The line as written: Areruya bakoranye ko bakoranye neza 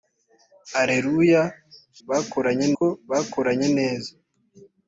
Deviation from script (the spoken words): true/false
false